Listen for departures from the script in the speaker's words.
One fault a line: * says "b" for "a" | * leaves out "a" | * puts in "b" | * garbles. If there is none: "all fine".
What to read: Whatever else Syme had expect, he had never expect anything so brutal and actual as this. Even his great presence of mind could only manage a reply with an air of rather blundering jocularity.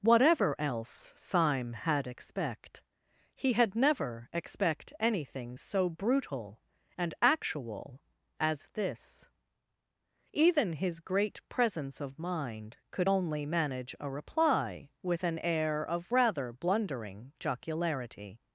all fine